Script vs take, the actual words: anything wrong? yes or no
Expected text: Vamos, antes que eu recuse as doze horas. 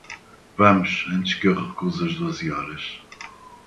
no